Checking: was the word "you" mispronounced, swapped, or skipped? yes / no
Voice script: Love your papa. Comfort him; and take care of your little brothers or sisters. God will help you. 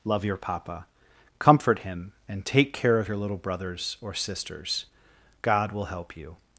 no